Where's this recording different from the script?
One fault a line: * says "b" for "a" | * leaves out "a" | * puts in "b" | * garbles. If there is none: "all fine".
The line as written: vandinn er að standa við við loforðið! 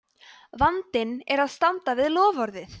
* leaves out "við"